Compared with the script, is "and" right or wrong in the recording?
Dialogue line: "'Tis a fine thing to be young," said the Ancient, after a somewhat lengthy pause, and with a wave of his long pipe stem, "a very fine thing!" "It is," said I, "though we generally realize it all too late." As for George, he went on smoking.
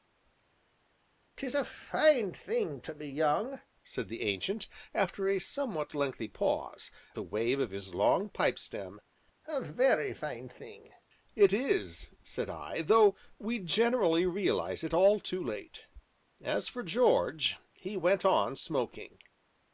wrong